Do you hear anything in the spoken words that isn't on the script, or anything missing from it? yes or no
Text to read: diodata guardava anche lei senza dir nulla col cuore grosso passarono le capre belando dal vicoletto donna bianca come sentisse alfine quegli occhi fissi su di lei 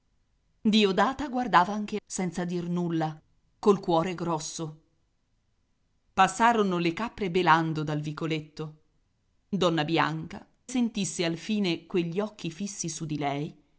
yes